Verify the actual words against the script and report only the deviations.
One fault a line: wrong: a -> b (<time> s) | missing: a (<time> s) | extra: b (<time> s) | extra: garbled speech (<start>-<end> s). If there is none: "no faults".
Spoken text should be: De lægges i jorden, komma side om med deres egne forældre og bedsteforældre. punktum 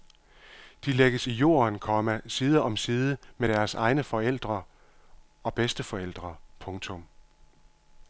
extra: side (2.8 s)